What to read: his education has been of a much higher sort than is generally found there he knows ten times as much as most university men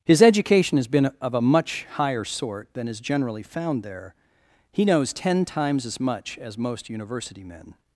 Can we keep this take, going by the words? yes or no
yes